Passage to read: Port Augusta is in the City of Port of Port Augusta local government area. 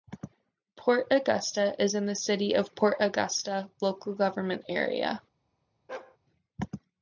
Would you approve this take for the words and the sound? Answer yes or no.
no